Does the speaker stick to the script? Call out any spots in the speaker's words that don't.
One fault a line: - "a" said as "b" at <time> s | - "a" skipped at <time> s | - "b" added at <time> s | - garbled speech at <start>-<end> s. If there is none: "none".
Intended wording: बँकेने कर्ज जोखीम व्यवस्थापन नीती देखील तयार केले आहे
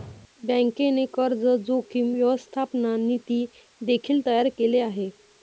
none